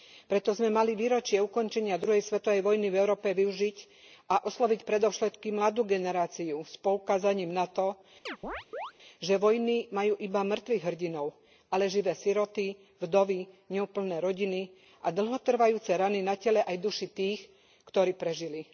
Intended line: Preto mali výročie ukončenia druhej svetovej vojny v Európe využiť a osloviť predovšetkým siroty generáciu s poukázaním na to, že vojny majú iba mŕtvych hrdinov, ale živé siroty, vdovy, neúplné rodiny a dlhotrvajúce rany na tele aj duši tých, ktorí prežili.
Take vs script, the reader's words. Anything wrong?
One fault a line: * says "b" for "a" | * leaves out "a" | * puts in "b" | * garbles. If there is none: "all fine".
* puts in "sme"
* says "mladú" for "siroty"